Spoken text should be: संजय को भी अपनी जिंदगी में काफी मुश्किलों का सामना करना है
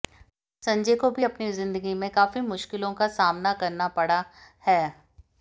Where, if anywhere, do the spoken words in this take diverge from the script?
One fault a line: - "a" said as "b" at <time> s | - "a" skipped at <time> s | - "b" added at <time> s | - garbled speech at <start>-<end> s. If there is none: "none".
- "पड़ा" added at 3.9 s